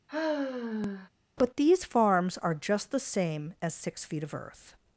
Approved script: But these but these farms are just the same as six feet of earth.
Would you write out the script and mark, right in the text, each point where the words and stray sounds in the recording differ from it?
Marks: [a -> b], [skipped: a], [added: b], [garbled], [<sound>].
[sigh] But these [skipped: but these] farms are just the same as six feet of earth.